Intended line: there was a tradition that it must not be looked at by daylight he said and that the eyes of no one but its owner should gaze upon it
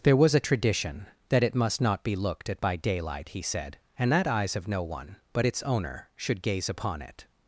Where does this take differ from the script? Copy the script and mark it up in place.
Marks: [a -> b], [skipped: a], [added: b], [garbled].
there was a tradition that it must not be looked at by daylight he said and that [skipped: the] eyes of no one but its owner should gaze upon it